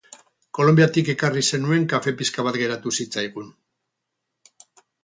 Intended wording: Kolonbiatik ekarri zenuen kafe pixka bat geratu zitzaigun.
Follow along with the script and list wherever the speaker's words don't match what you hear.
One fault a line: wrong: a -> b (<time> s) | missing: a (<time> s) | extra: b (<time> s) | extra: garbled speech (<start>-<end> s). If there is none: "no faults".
no faults